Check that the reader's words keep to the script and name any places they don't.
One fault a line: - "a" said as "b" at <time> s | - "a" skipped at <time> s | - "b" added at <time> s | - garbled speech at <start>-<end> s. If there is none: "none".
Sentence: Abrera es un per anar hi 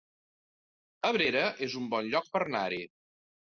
- "bon lloc" added at 1.9 s